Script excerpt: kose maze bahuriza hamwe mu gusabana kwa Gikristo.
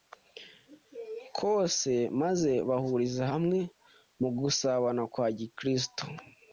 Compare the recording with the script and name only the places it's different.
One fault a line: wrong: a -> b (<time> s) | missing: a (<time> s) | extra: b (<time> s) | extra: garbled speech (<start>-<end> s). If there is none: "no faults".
no faults